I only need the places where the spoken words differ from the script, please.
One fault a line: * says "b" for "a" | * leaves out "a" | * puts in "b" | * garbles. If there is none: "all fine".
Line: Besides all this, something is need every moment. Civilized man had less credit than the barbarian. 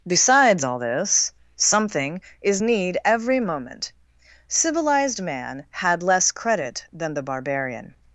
all fine